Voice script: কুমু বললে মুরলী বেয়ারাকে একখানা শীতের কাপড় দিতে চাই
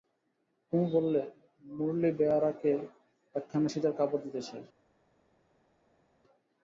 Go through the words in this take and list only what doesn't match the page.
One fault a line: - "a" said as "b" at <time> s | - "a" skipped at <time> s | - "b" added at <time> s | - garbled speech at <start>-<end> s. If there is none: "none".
none